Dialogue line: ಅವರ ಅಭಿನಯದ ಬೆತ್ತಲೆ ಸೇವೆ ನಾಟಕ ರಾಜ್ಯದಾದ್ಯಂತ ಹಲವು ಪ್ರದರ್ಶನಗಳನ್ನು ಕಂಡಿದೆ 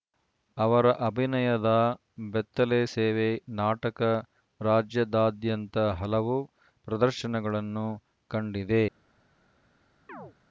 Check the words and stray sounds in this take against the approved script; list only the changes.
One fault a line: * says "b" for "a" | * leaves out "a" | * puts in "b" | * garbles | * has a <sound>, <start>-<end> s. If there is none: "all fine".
* has a chirp, 10.1-10.3 s